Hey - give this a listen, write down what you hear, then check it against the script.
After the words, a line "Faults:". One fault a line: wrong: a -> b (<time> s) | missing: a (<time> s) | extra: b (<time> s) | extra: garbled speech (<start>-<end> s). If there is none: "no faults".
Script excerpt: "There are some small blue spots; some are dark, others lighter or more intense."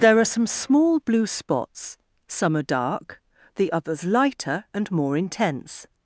"There are some small blue spots; some are dark, the others lighter and more intense."
Faults:
extra: the (3.5 s)
wrong: or -> and (4.7 s)